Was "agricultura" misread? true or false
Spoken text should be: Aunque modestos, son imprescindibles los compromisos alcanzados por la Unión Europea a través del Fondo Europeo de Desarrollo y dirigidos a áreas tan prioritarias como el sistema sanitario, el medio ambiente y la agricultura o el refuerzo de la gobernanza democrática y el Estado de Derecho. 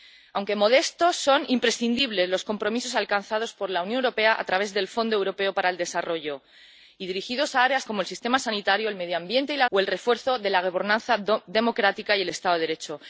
true